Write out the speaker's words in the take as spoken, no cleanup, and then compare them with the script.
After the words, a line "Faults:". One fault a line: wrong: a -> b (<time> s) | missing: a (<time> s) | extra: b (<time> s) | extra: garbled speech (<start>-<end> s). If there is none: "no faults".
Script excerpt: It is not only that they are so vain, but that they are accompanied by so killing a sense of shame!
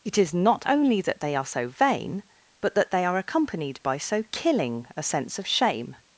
It is not only that they are so vain, but that they are accompanied by so killing a sense of shame!
Faults:
no faults